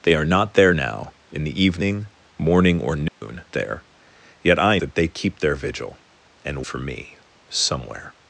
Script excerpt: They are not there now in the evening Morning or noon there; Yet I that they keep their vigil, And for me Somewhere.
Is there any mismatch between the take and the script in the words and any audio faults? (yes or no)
yes